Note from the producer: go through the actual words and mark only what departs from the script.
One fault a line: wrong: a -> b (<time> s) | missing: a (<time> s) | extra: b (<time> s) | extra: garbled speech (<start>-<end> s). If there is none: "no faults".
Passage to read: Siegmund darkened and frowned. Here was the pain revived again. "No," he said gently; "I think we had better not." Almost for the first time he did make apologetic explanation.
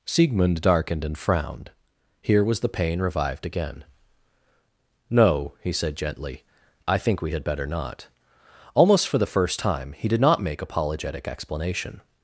extra: not (10.2 s)